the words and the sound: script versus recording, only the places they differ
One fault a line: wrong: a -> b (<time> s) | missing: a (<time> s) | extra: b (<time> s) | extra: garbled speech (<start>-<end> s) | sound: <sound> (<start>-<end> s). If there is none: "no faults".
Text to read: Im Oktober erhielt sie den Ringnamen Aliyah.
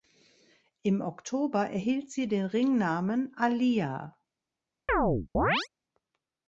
sound: chirp (4.9-5.7 s)